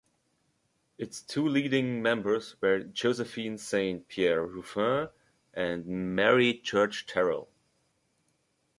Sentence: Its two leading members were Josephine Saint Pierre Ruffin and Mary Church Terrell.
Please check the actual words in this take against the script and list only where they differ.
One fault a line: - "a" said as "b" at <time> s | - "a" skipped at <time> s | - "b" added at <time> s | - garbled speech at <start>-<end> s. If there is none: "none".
none